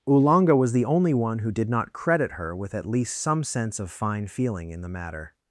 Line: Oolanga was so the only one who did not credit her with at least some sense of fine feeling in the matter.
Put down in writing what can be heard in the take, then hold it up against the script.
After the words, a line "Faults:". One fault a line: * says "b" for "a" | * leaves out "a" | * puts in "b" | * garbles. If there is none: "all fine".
Oolanga was the only one who did not credit her with at least some sense of fine feeling in the matter.
Faults:
* leaves out "so"